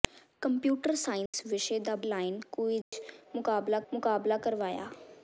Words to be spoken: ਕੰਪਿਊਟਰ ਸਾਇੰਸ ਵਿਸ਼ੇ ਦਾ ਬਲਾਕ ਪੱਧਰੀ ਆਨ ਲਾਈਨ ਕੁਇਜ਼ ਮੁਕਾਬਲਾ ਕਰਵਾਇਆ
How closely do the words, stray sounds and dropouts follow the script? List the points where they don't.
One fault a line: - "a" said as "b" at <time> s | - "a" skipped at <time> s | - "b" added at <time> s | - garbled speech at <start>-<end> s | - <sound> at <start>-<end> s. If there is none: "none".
- dropout at 1.3-1.3 s
- "ਬਲਾਕ ਪੱਧਰੀ ਆਨ" skipped at 1.9 s
- dropout at 2.8-2.9 s
- "ਮੁਕਾਬਲਾ" added at 3.9 s